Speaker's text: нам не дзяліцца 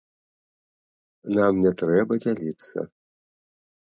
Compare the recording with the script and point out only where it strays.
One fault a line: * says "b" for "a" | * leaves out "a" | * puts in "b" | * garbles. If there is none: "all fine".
* puts in "трэба"